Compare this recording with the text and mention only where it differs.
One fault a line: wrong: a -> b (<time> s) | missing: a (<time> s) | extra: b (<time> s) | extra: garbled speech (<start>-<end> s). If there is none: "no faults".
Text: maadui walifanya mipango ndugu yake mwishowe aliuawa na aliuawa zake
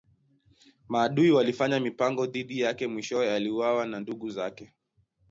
wrong: ndugu -> dhidi (2.2 s)
wrong: aliuawa -> ndugu (4.0 s)